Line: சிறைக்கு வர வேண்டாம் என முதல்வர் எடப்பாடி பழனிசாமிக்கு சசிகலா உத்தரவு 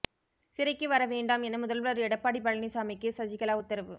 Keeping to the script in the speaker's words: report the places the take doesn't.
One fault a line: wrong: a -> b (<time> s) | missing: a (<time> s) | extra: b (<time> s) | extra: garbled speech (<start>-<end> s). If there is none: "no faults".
no faults